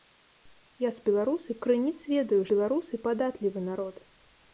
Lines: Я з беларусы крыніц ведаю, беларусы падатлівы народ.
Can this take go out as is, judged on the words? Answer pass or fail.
pass